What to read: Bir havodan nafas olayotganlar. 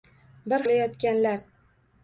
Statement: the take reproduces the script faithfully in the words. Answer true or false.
false